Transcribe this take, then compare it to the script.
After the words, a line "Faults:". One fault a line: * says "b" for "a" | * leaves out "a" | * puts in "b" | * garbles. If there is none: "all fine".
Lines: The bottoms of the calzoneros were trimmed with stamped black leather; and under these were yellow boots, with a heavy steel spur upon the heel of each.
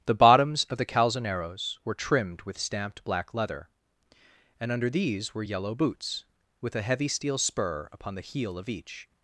The bottoms of the calzoneros were trimmed with stamped black leather; and under these were yellow boots, with a heavy steel spur upon the heel of each.
Faults:
all fine